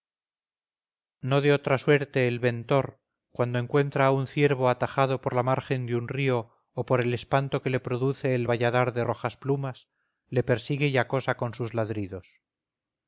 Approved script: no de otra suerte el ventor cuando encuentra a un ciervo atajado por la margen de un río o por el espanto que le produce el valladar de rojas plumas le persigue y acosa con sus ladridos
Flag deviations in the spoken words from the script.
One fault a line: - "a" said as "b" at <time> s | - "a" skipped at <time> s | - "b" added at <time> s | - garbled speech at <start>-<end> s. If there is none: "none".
none